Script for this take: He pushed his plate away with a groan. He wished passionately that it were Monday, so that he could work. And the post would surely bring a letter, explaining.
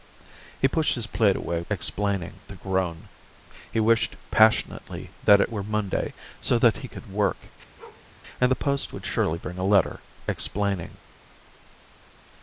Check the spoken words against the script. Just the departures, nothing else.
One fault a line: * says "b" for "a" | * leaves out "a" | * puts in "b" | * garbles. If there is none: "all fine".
* says "explaining" for "with"